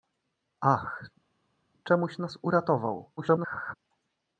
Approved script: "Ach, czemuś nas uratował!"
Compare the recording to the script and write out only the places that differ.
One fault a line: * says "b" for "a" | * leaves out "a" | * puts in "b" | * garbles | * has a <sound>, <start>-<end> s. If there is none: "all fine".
* garbles